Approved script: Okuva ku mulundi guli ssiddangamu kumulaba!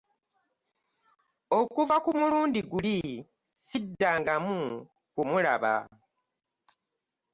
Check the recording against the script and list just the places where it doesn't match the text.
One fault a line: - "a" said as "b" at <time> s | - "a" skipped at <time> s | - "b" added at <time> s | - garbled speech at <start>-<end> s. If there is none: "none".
none